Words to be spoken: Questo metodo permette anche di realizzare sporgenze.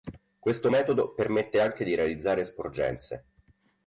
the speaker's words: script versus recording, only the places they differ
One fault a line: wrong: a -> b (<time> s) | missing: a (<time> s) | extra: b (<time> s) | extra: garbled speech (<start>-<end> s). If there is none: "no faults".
no faults